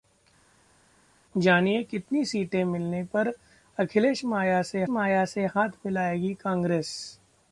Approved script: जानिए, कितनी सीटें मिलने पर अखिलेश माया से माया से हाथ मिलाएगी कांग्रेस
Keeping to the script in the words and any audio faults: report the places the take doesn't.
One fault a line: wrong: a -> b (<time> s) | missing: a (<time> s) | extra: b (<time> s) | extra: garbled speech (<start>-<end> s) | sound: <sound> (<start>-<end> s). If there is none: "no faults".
no faults